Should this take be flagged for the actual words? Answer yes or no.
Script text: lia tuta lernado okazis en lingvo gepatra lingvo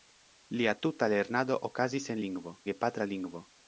no